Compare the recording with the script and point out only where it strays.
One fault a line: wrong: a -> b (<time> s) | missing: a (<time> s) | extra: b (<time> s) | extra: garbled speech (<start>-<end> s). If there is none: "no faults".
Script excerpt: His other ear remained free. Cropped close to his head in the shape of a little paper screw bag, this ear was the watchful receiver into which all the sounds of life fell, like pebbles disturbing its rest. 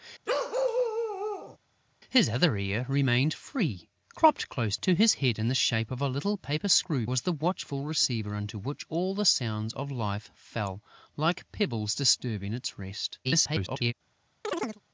missing: bag this ear (7.1 s)
extra: garbled speech (13.2-13.9 s)